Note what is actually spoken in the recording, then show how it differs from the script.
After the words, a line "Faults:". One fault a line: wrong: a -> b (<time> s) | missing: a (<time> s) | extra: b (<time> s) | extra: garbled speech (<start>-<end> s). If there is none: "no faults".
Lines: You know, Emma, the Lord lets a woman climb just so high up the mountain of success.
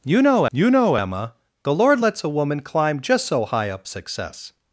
You know you know, Emma, the Lord lets a woman climb just so high up success.
Faults:
extra: you know (0.5 s)
missing: the mountain of (3.9 s)